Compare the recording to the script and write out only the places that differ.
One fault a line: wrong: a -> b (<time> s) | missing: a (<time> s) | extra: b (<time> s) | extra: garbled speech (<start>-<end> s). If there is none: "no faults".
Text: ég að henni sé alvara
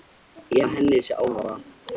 no faults